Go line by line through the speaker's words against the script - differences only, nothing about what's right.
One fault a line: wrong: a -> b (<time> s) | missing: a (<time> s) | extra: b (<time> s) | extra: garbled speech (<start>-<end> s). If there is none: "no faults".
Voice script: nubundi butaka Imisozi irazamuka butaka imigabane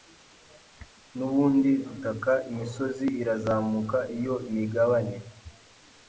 wrong: butaka -> iyo (4.2 s)